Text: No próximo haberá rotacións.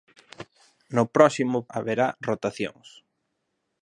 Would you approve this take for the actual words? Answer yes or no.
yes